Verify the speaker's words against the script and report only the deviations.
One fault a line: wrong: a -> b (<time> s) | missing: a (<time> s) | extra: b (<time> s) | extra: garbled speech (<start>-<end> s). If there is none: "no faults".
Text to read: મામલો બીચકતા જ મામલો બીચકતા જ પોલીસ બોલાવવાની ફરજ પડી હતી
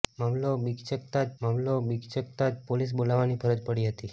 no faults